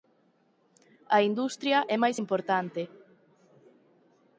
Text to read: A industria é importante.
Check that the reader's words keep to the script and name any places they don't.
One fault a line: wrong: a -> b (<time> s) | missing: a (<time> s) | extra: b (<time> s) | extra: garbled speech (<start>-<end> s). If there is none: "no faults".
extra: máis (2.0 s)